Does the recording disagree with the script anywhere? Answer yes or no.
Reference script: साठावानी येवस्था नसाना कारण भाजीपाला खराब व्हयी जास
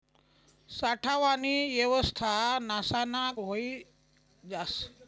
yes